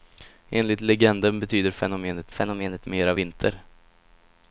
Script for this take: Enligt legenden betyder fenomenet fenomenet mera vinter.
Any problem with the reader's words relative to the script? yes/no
no